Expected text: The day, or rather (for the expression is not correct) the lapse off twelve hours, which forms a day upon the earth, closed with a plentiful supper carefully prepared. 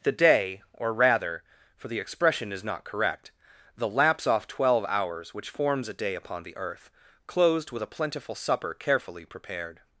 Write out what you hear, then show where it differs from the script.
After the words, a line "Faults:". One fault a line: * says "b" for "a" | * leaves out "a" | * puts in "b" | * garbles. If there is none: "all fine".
The day, or rather (for the expression is not correct) the lapse off twelve hours, which forms a day upon the earth, closed with a plentiful supper carefully prepared.
Faults:
all fine